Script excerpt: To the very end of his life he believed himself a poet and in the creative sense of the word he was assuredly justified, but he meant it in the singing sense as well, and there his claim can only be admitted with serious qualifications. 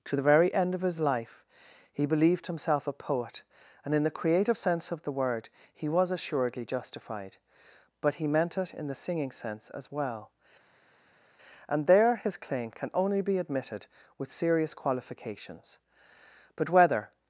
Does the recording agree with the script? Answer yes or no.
no